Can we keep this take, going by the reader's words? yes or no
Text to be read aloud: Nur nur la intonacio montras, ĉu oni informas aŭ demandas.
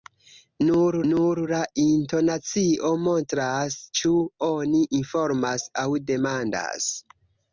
yes